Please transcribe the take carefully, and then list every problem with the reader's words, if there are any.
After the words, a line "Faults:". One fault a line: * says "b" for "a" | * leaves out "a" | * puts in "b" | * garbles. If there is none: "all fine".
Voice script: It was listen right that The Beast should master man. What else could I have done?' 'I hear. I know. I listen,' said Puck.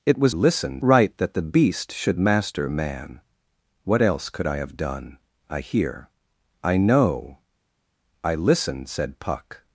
It was listen right that The Beast should master man. What else could I have done?' 'I hear. I know. I listen,' said Puck.
Faults:
all fine